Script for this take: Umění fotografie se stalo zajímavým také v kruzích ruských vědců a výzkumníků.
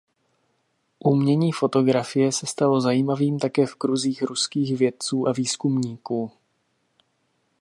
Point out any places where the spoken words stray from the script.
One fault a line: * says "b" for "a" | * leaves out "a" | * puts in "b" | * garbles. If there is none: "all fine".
all fine